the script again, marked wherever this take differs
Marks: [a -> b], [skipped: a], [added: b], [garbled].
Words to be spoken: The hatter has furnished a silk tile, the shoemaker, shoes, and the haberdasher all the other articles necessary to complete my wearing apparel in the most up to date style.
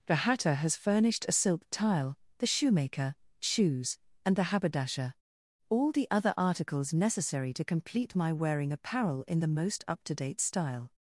The hatter has furnished a silk tile, the shoemaker, shoes, and the haberdasher all the other articles necessary to complete my wearing apparel in the most up to date style.